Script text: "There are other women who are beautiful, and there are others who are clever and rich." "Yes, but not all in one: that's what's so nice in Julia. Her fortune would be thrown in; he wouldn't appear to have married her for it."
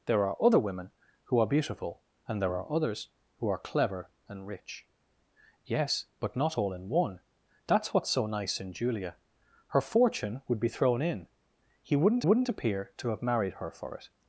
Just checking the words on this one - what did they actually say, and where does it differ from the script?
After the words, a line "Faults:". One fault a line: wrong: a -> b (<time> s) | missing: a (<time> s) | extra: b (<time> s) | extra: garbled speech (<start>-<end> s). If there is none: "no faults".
"There are other women who are beautiful, and there are others who are clever and rich." "Yes, but not all in one: that's what's so nice in Julia. Her fortune would be thrown in; he wouldn't wouldn't appear to have married her for it."
Faults:
extra: wouldn't (12.2 s)